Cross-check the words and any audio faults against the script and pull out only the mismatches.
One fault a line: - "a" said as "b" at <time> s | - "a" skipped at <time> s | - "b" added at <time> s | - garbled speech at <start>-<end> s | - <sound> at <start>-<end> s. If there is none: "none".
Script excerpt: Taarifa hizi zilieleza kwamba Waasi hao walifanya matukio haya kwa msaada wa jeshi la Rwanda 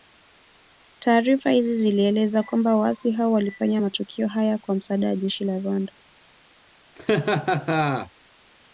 - laugh at 7.0-8.1 s